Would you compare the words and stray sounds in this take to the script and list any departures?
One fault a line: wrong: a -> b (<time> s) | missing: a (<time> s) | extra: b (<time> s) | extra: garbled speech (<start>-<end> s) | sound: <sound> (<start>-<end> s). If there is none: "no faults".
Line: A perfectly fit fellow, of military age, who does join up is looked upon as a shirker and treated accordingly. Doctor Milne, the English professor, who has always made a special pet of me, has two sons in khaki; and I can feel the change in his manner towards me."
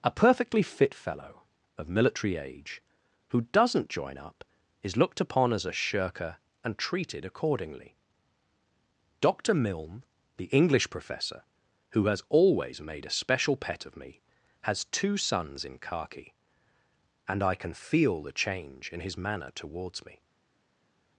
wrong: does -> doesn't (3.5 s)